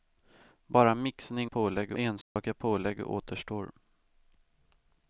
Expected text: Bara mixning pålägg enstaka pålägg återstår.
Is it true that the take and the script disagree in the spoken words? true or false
false